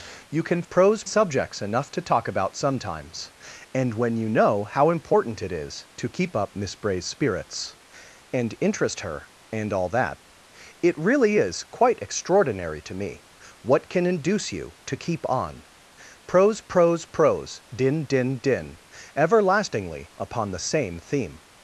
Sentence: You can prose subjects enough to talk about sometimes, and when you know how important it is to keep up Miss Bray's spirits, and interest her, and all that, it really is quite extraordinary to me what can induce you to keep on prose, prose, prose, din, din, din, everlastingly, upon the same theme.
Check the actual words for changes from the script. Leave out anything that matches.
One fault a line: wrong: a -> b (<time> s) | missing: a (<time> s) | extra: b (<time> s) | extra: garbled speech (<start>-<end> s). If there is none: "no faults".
no faults